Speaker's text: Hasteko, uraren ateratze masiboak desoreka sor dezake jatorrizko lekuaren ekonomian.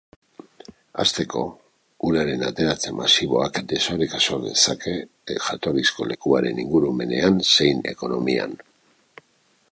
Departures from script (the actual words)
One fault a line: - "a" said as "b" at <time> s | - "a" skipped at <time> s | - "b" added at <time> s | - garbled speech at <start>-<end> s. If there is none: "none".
- "ingurumenean zein" added at 6.7 s